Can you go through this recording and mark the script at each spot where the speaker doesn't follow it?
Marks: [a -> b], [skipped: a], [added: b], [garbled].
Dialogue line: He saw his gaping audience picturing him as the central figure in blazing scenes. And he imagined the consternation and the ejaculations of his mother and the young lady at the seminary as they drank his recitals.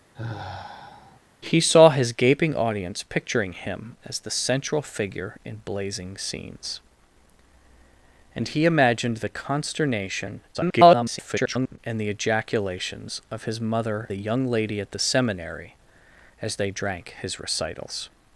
He saw his gaping audience picturing him as the central figure in blazing scenes. And he imagined the consternation [garbled] and the ejaculations of his mother [skipped: and] the young lady at the seminary as they drank his recitals.